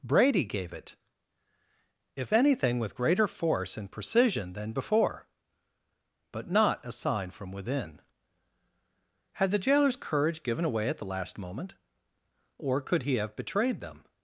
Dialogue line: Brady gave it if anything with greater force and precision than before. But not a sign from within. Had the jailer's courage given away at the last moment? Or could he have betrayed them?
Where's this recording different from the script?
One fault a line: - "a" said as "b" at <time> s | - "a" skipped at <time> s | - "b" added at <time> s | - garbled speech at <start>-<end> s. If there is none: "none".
none